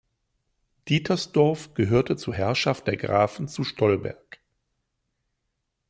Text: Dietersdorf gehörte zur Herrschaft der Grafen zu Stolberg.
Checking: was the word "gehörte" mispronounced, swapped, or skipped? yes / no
no